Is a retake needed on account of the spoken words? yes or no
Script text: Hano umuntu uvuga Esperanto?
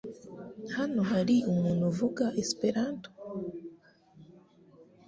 yes